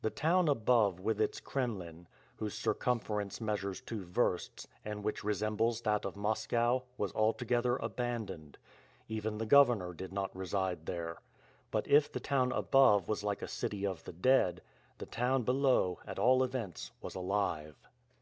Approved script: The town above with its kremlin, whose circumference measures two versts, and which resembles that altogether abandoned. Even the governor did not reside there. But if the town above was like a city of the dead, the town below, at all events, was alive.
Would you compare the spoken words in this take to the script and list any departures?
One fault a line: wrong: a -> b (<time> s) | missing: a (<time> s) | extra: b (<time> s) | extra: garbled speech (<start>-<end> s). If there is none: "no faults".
extra: of Moscow was (6.0 s)